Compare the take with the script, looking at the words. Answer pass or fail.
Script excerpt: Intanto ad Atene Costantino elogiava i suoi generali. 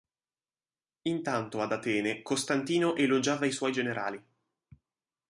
pass